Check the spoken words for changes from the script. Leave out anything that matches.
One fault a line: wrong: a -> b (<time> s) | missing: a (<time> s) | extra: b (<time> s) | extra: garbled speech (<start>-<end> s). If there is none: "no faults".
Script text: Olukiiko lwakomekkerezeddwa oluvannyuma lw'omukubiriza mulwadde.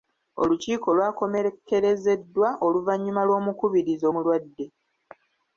no faults